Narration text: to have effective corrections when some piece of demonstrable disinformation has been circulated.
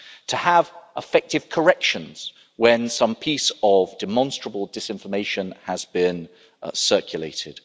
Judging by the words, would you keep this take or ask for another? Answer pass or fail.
pass